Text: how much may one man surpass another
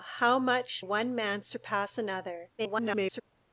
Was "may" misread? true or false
true